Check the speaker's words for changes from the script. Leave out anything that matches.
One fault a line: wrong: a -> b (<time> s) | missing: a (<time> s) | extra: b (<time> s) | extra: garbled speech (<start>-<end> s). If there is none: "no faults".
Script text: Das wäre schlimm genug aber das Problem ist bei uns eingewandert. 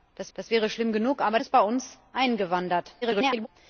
extra: das (0.3 s)
missing: das Problem (1.4 s)
extra: garbled speech (3.0-3.5 s)